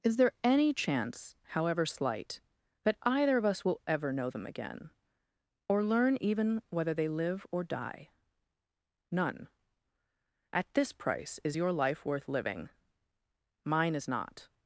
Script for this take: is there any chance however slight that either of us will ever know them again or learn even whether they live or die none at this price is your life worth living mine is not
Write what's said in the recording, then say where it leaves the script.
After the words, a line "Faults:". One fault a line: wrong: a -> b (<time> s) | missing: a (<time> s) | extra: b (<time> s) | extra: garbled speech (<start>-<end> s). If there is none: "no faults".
is there any chance however slight that either of us will ever know them again or learn even whether they live or die none at this price is your life worth living mine is not
Faults:
no faults